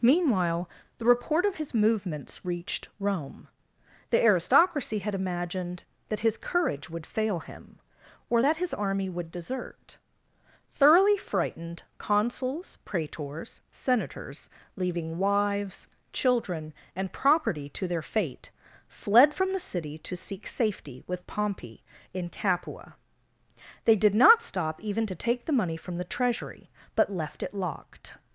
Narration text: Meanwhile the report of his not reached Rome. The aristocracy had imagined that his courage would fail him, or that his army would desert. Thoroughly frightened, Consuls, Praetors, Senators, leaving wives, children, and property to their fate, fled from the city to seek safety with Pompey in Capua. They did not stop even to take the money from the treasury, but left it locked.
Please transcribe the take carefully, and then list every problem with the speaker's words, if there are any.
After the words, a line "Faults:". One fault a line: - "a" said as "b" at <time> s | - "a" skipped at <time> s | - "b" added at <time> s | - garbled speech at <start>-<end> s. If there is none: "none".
Meanwhile the report of his movements reached Rome. The aristocracy had imagined that his courage would fail him, or that his army would desert. Thoroughly frightened, Consuls, Praetors, Senators, leaving wives, children, and property to their fate, fled from the city to seek safety with Pompey in Capua. They did not stop even to take the money from the treasury, but left it locked.
Faults:
- "not" said as "movements" at 1.7 s